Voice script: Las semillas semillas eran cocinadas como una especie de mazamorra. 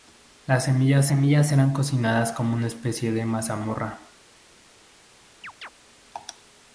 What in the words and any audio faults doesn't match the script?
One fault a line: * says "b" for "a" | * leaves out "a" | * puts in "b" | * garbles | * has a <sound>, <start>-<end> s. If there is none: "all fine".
* has a chirp, 5.4-5.7 s